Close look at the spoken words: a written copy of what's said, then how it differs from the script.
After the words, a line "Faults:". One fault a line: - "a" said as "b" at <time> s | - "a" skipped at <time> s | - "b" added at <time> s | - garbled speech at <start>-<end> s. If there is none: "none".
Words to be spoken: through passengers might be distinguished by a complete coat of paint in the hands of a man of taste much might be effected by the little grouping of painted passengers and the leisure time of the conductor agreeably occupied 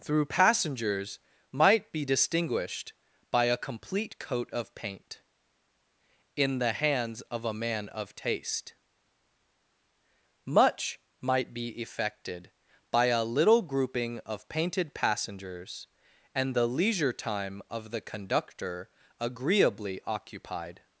through passengers might be distinguished by a complete coat of paint in the hands of a man of taste much might be effected by a little grouping of painted passengers and the leisure time of the conductor agreeably occupied
Faults:
- "the" said as "a" at 13.1 s